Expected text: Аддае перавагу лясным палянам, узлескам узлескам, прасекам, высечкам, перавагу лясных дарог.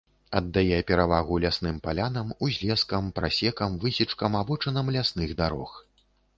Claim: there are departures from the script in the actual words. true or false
true